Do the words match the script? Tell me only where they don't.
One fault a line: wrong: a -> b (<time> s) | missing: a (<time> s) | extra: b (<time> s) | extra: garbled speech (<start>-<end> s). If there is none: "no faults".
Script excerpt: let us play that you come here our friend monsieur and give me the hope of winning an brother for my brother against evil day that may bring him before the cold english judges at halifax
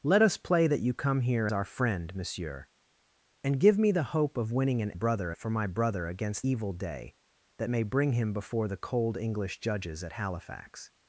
no faults